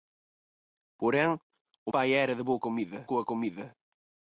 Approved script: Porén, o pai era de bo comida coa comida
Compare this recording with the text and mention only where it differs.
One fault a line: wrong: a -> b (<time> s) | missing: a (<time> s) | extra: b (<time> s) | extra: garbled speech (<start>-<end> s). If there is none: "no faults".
no faults